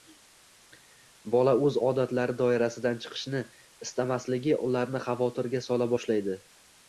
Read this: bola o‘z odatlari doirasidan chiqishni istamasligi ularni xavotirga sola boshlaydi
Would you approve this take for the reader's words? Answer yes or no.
yes